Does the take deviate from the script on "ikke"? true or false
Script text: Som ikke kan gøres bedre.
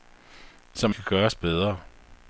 true